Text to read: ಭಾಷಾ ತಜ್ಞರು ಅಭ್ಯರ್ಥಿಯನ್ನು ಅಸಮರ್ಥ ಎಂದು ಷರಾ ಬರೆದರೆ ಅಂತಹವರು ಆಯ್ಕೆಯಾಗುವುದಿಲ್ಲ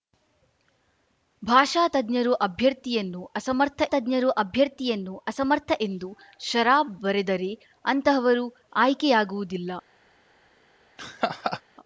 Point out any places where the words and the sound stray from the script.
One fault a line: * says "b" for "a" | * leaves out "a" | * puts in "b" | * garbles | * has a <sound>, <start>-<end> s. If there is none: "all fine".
* puts in "ತಜ್ಞರು ಅಭ್ಯರ್ಥಿಯನ್ನು ಅಸಮರ್ಥ"
* has a laugh, 11.0-11.6 s